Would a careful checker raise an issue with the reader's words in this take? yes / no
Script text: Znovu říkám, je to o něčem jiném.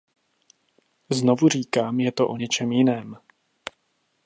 no